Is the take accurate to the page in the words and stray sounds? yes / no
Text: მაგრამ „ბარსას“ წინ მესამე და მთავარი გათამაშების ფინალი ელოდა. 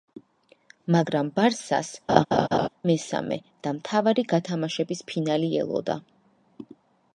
no